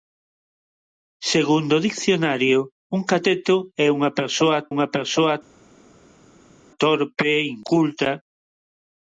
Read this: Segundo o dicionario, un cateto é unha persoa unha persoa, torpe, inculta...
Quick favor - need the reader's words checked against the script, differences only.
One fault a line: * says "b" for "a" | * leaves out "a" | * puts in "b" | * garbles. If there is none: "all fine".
all fine